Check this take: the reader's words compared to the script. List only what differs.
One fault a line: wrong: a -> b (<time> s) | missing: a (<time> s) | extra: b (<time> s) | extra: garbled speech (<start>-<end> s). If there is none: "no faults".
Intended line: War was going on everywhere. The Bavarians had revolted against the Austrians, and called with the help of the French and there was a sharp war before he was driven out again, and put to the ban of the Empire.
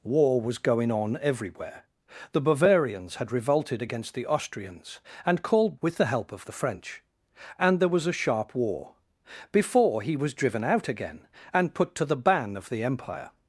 no faults